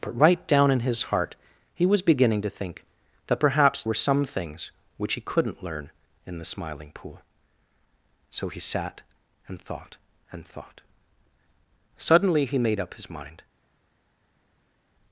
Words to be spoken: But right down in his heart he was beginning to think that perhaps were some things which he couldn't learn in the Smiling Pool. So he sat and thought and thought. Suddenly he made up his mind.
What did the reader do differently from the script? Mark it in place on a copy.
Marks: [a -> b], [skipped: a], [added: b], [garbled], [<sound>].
But right down in his heart he was beginning to think that perhaps were some things which he couldn't learn in the Smiling Pool. So he sat and thought and thought. Suddenly he made up his mind.